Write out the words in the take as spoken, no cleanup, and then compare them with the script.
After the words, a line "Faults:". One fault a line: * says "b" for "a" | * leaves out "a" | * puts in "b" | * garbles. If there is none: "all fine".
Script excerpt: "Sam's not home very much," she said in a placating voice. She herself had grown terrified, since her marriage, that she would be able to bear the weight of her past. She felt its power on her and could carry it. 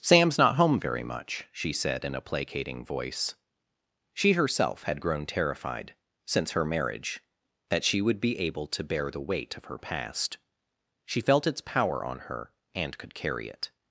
"Sam's not home very much," she said in a placating voice. She herself had grown terrified, since her marriage, that she would be able to bear the weight of her past. She felt its power on her and could carry it.
Faults:
all fine